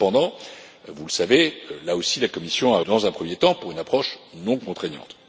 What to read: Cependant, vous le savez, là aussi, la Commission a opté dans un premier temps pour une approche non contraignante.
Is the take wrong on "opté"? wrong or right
wrong